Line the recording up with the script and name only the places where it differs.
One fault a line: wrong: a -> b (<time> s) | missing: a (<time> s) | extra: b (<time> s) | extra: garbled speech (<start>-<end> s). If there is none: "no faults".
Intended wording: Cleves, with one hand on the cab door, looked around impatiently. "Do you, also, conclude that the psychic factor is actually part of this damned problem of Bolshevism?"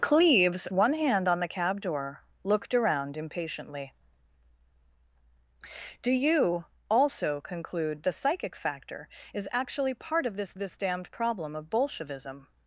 missing: with (0.7 s)
missing: that (8.0 s)
extra: this (10.6 s)